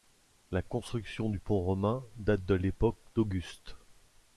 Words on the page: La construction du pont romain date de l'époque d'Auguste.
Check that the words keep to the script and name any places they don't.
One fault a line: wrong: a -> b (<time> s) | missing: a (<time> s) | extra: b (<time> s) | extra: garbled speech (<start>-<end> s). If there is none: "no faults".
no faults